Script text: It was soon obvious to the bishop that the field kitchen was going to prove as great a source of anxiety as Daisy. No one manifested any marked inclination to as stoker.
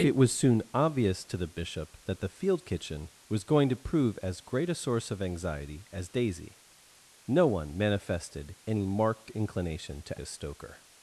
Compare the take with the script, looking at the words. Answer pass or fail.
pass